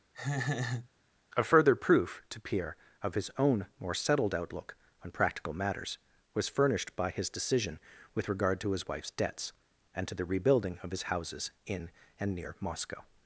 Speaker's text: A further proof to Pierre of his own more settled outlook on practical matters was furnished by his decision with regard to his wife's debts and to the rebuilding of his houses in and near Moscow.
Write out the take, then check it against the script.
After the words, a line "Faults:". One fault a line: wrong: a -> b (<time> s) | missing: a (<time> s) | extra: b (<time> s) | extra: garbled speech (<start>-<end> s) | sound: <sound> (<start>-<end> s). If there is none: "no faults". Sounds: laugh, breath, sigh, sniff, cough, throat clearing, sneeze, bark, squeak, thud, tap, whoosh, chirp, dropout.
A further proof to Pierre of his own more settled outlook on practical matters was furnished by his decision with regard to his wife's debts and to the rebuilding of his houses in and near Moscow.
Faults:
sound: laugh (0.1-0.9 s)